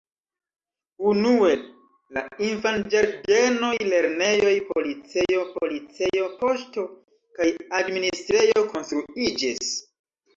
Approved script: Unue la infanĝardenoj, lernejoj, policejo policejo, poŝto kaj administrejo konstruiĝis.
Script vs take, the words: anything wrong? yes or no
no